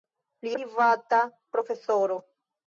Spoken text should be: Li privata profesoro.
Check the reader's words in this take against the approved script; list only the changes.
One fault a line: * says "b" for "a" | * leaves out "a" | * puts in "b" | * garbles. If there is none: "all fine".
all fine